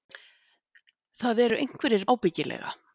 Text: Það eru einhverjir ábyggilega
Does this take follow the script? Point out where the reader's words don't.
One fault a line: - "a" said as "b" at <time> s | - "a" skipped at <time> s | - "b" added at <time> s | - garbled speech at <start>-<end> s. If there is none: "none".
none